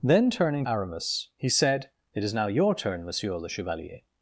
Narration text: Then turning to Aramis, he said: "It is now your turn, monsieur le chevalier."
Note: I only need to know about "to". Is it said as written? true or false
false